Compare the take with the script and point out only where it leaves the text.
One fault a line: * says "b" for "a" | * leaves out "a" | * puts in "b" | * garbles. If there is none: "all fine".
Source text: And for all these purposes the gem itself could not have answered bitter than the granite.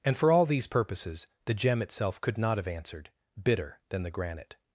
all fine